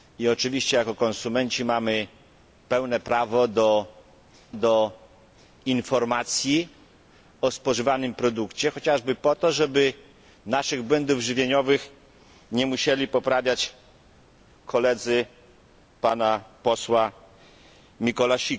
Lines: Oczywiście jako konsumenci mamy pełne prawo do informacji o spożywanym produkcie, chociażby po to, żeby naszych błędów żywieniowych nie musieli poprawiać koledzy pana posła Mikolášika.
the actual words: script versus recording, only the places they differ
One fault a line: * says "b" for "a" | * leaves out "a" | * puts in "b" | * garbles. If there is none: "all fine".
* puts in "do"